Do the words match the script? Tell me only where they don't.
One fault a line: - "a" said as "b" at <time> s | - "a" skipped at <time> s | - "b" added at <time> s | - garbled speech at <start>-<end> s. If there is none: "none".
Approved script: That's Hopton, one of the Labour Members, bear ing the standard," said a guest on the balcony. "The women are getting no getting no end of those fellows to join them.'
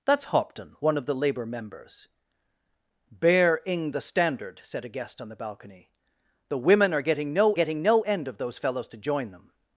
none